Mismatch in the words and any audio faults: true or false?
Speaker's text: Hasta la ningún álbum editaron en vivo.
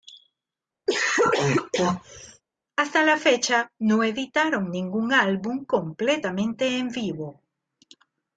true